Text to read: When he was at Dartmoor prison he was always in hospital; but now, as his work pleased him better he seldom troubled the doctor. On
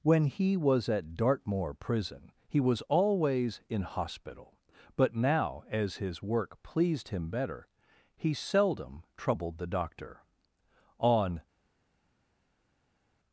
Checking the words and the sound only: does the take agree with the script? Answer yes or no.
yes